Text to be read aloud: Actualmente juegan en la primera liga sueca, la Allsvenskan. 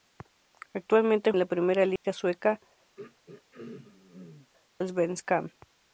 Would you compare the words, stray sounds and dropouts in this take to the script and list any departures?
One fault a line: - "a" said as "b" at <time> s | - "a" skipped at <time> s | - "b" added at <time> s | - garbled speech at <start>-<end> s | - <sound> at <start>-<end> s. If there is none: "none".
- "juegan" skipped at 1.3 s
- dropout at 2.0-2.0 s
- "la" skipped at 2.6 s
- throat clearing at 3.0-4.5 s